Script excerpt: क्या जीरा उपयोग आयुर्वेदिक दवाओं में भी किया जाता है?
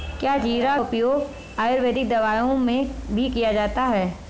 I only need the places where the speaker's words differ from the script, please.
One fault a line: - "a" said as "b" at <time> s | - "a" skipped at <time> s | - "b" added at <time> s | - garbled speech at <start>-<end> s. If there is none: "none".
none